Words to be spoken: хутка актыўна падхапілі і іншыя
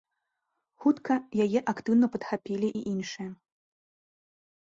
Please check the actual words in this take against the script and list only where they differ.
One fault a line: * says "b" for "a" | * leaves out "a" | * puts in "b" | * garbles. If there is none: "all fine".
* puts in "яе"